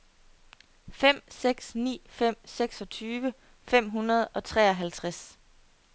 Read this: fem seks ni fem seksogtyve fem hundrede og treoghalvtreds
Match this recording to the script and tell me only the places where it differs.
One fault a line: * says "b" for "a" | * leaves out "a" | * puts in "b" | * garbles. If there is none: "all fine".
all fine